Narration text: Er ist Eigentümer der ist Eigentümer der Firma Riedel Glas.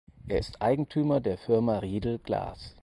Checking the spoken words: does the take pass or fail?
fail